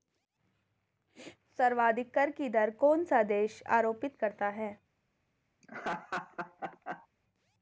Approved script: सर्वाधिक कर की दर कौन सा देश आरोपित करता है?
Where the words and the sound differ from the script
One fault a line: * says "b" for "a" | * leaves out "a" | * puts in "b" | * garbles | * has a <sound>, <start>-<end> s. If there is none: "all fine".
* has a laugh, 5.6-7.1 s